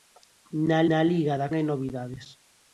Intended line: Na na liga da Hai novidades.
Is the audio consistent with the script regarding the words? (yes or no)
yes